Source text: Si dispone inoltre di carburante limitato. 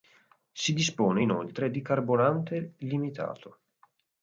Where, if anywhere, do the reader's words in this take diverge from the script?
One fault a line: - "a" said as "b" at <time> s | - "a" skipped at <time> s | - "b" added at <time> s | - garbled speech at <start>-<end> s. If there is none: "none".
none